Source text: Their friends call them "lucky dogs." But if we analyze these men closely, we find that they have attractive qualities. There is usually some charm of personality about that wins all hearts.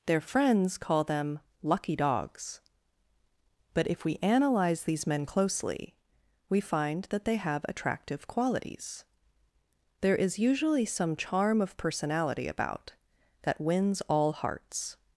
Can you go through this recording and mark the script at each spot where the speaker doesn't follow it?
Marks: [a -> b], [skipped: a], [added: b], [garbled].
Their friends call them "lucky dogs." But if we analyze these men closely, we find that they have attractive qualities. There is usually some charm of personality about that wins all hearts.